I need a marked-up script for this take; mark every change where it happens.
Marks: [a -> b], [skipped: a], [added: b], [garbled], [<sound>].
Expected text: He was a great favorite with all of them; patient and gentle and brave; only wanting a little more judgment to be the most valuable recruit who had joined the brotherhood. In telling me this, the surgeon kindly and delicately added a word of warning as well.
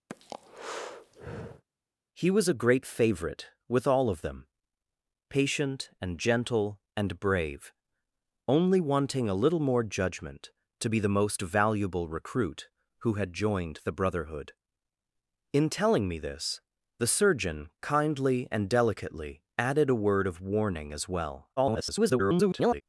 [breath] He was a great favorite with all of them; patient and gentle and brave; only wanting a little more judgment to be the most valuable recruit who had joined the brotherhood. In telling me this, the surgeon kindly and delicately added a word of warning as well. [garbled]